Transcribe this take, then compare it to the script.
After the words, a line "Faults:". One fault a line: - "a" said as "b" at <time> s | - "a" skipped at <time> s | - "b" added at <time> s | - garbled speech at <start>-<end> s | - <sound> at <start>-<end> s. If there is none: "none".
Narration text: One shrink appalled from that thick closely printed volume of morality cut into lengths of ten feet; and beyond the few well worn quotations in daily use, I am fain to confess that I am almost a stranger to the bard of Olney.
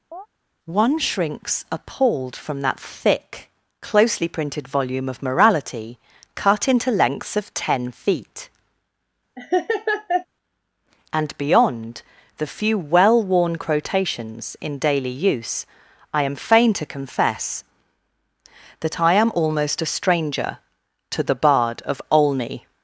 One shrinks appalled from that thick closely printed volume of morality cut into lengths of ten feet; and beyond the few well worn quotations in daily use, I am fain to confess that I am almost a stranger to the bard of Olney.
Faults:
- chirp at 0.1-0.3 s
- "shrink" said as "shrinks" at 1.0 s
- laugh at 9.4-10.3 s